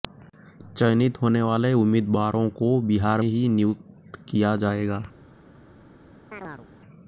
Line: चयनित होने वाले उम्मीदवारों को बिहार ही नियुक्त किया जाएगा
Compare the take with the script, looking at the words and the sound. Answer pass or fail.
fail